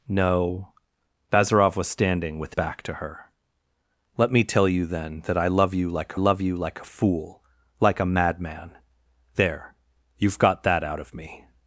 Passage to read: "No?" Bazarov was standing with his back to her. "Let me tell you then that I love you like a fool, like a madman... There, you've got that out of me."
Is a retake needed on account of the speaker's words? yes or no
yes